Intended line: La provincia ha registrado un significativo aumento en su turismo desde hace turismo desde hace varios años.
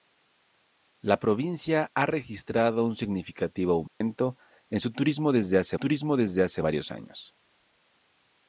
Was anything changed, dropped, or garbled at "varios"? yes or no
no